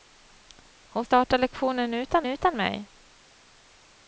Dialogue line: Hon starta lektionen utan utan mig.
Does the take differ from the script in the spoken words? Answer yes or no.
no